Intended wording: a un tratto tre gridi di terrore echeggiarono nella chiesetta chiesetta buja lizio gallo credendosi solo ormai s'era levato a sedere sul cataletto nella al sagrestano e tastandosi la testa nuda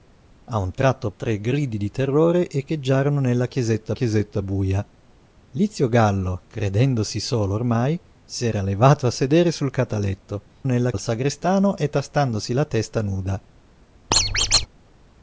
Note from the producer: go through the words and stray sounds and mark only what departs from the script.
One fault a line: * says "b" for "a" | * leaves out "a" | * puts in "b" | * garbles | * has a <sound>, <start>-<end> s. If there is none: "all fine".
* has a squeak, 14.1-14.7 s